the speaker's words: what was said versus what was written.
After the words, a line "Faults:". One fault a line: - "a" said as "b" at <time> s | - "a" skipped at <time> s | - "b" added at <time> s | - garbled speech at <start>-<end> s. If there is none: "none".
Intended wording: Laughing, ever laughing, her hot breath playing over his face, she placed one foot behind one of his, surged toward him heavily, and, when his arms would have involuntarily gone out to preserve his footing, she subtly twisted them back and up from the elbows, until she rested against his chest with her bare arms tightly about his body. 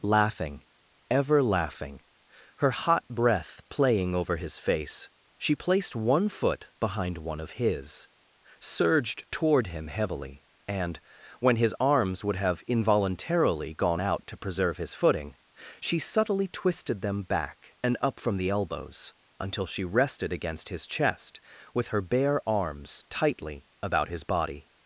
Laughing, ever laughing, her hot breath playing over his face, she placed one foot behind one of his, surged toward him heavily, and, when his arms would have involuntarily gone out to preserve his footing, she subtly twisted them back and up from the elbows, until she rested against his chest with her bare arms tightly about his body.
Faults:
none